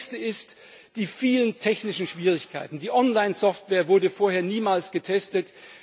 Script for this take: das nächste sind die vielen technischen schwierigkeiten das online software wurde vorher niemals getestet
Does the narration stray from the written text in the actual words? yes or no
yes